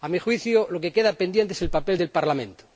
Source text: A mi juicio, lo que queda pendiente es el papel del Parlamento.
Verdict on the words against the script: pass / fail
pass